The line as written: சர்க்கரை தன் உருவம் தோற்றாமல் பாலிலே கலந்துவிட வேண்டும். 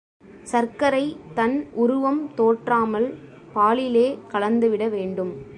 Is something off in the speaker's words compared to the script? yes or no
no